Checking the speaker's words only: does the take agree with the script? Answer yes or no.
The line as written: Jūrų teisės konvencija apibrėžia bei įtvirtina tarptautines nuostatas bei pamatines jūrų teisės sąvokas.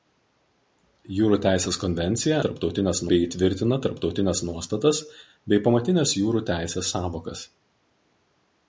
no